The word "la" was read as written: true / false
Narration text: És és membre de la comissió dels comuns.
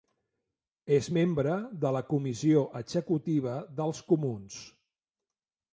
true